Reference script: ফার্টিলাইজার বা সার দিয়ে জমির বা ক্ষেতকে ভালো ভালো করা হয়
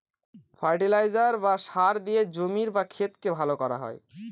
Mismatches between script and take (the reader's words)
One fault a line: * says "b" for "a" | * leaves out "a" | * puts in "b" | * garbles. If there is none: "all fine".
* leaves out "ভালো"